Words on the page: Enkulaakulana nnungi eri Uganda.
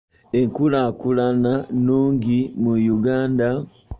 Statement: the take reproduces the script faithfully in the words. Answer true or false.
false